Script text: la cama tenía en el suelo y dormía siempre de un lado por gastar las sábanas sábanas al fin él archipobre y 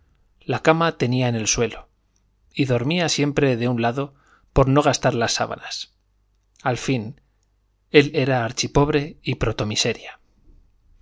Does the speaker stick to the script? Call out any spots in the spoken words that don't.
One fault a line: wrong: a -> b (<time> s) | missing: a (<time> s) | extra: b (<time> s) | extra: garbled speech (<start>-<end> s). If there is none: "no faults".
extra: no (4.7 s)
missing: sábanas (5.9 s)
extra: era (8.1 s)